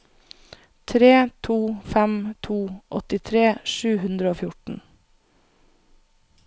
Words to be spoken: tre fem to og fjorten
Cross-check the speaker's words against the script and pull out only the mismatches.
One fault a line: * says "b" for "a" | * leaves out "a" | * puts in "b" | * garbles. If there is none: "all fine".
* puts in "to"
* puts in "åttitre sju hundre"